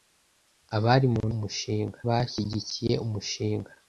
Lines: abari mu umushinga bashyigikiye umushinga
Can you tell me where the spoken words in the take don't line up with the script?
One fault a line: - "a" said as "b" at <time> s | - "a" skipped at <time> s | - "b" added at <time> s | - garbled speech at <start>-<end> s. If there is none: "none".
none